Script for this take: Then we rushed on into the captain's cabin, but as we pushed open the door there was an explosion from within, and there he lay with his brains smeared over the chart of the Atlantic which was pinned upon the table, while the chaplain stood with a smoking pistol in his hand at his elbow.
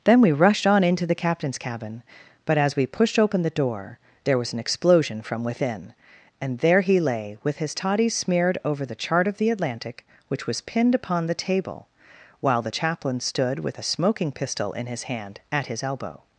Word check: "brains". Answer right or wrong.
wrong